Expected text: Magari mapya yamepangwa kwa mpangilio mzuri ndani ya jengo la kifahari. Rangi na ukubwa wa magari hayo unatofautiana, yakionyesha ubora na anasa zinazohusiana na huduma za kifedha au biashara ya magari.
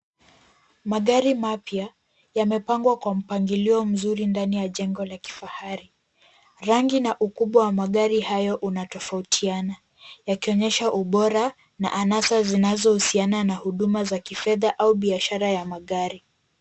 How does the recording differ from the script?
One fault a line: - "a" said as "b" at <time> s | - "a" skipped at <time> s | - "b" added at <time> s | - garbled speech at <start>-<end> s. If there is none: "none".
none